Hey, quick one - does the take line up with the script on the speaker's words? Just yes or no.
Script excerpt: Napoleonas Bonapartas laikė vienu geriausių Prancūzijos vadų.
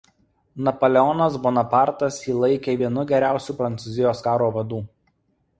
no